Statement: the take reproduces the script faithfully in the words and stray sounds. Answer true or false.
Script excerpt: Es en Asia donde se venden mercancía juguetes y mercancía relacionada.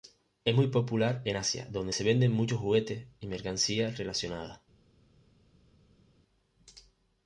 false